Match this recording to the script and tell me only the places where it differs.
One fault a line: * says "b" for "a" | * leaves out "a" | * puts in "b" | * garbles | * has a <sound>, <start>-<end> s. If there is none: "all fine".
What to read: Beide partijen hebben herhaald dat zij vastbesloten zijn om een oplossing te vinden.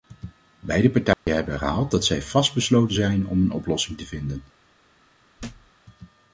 * has a dropout, 1.1-1.3 s
* has a thud, 5.4-5.7 s